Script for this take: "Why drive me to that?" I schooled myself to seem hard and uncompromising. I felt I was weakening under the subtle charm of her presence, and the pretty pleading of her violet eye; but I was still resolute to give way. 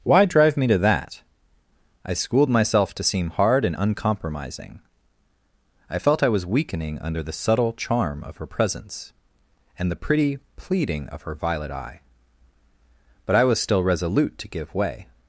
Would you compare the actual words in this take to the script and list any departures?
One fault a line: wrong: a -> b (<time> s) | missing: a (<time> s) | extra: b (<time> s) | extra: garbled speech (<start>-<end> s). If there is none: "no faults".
no faults